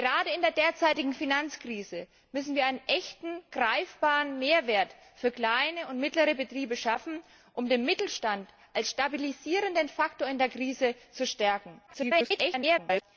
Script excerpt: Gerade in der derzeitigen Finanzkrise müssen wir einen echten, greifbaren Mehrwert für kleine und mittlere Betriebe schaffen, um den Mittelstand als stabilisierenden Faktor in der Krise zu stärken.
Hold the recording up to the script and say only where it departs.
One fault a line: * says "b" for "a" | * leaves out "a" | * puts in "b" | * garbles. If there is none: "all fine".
* garbles